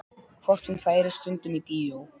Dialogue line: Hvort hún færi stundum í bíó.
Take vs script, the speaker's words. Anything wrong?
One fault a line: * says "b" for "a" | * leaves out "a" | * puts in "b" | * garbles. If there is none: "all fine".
all fine